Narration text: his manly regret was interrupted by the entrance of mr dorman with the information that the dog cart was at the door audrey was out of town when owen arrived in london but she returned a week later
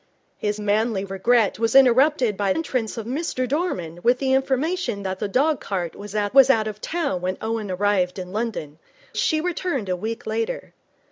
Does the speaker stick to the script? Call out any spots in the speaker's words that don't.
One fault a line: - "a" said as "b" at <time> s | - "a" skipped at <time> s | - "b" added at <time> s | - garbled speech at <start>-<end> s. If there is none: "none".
- "the" skipped at 2.5 s
- "the door audrey" skipped at 6.3 s
- "but" skipped at 8.8 s